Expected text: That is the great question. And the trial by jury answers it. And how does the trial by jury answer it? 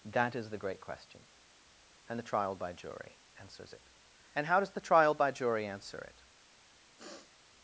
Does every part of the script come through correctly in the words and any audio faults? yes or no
no